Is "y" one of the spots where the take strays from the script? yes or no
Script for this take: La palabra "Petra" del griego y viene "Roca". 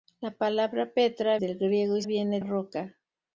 no